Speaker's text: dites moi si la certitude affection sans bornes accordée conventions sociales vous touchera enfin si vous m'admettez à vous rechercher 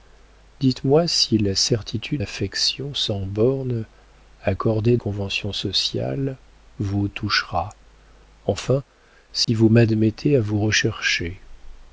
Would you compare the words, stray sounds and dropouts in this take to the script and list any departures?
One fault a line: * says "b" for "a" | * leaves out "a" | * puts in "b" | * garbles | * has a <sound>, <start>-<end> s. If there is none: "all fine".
* has a dropout, 9.4-9.5 s